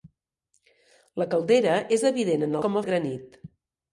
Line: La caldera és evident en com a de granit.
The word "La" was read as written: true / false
true